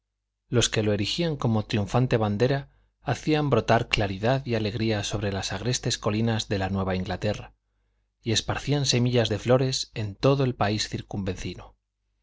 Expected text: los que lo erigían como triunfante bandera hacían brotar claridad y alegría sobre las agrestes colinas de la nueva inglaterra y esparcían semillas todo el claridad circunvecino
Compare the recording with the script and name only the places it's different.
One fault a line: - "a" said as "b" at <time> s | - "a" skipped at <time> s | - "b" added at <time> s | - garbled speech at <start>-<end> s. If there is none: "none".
- "de flores en" added at 9.3 s
- "claridad" said as "país" at 10.5 s